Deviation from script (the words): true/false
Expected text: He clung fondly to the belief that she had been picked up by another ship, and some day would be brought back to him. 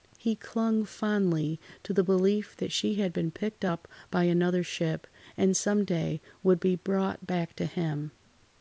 false